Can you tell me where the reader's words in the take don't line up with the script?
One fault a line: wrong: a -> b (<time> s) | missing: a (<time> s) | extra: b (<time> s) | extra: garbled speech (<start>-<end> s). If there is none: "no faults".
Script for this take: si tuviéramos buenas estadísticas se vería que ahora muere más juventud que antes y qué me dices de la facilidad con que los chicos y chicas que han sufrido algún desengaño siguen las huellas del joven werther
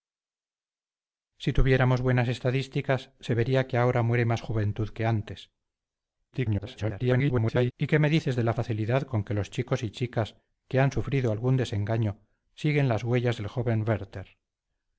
extra: garbled speech (6.3-7.7 s)